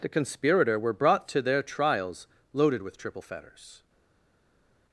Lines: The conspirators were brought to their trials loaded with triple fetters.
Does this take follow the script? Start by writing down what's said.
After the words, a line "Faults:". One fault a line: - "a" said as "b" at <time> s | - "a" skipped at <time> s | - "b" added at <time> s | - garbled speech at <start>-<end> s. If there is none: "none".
The conspirator were brought to their trials loaded with triple fetters.
Faults:
- "conspirators" said as "conspirator" at 0.1 s